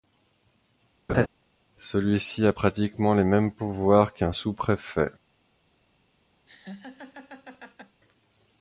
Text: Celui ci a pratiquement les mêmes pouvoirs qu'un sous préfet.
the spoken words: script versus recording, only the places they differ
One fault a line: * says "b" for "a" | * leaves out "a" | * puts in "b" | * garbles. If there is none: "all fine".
all fine